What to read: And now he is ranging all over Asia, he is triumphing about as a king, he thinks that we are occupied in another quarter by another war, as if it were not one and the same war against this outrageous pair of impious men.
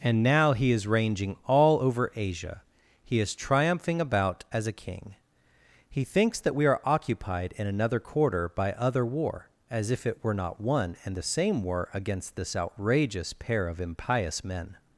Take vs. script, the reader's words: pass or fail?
fail